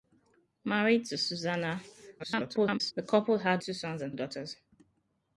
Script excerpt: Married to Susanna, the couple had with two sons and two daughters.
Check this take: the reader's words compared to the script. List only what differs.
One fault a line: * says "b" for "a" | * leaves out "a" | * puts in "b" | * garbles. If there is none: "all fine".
* garbles
* leaves out "with"
* leaves out "two"